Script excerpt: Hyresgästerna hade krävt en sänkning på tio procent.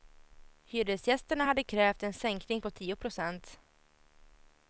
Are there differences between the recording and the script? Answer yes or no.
no